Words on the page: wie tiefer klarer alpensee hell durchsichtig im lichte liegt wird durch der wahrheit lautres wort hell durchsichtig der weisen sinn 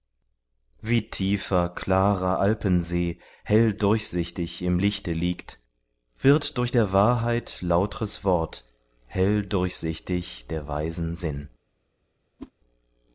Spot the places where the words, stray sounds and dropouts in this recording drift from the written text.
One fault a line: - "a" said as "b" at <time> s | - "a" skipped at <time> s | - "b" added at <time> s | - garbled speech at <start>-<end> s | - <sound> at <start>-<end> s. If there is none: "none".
- whoosh at 12.4-12.5 s